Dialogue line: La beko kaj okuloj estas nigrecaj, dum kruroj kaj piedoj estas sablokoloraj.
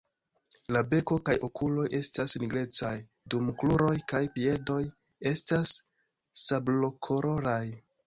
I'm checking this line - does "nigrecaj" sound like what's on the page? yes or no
yes